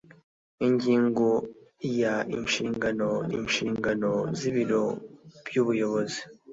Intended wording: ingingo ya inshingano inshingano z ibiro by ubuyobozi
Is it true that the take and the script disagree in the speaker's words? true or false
false